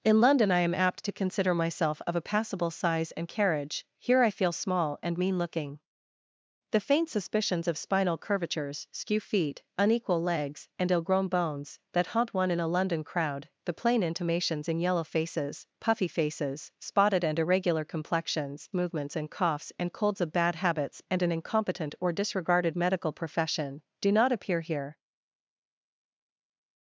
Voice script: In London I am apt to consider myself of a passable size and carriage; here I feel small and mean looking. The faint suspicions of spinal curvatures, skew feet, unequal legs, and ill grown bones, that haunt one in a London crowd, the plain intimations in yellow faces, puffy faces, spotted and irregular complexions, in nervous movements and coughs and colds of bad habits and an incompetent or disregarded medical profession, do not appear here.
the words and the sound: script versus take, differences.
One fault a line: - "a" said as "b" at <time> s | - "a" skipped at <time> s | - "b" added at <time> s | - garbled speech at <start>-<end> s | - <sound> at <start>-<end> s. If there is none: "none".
- "in nervous" skipped at 18.7 s